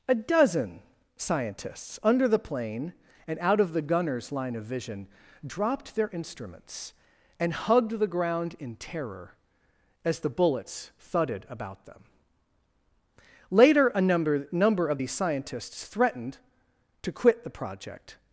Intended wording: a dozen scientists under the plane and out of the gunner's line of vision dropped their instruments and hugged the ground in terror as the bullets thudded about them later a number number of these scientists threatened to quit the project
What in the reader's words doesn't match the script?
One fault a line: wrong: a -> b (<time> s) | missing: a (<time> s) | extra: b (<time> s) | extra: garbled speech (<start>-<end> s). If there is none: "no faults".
no faults